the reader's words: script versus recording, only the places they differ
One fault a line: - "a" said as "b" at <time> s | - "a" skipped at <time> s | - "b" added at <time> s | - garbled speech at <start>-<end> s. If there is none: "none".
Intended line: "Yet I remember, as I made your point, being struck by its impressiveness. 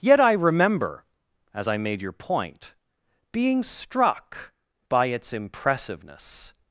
none